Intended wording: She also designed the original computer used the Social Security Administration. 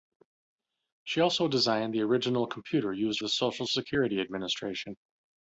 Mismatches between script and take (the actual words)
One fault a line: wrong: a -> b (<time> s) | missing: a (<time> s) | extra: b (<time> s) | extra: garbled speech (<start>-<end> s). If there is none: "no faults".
no faults